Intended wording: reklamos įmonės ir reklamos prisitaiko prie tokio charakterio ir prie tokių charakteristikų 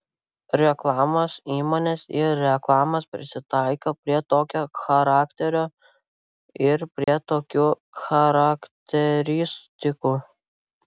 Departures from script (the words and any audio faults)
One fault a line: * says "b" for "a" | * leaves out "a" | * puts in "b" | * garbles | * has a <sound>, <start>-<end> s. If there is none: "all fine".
* has a dropout, 7.0-7.1 s